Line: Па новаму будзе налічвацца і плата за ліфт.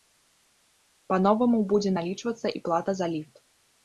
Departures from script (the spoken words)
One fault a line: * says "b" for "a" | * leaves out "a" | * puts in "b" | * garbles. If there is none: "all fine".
all fine